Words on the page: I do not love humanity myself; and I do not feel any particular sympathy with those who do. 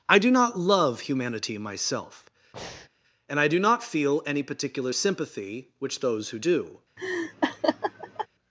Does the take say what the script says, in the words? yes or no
no